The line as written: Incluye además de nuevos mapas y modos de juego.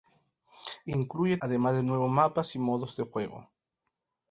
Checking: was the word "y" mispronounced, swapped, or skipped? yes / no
no